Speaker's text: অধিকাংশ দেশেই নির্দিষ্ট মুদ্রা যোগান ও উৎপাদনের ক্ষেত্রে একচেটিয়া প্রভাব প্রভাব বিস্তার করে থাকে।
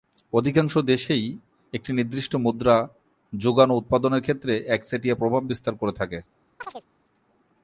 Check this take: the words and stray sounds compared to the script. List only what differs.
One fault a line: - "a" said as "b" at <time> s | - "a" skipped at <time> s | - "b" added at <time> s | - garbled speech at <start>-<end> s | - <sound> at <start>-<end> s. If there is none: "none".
- "একটি" added at 1.7 s
- "প্রভাব" skipped at 5.4 s
- chirp at 6.6-6.8 s